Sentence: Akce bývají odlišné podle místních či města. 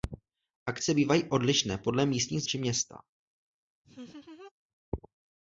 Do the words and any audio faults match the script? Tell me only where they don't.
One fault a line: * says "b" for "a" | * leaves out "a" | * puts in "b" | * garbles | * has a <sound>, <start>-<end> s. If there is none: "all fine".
* has a laugh, 3.8-4.5 s